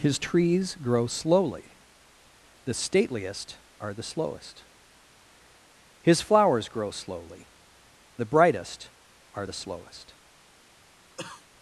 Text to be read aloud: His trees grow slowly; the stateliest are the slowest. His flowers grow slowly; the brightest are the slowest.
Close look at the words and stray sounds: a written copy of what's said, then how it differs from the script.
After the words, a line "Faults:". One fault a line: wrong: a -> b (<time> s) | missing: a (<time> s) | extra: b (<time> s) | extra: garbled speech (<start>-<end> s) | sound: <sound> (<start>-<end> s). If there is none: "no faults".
His trees grow slowly; the stateliest are the slowest. His flowers grow slowly; the brightest are the slowest.
Faults:
sound: cough (11.2-11.5 s)